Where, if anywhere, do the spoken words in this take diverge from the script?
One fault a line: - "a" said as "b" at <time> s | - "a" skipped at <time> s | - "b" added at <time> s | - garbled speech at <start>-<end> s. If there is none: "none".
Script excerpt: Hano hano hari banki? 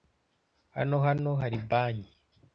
none